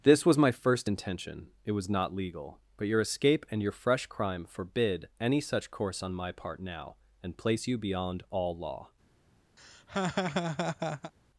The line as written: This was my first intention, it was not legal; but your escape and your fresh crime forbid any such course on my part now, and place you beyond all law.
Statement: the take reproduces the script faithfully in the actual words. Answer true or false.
true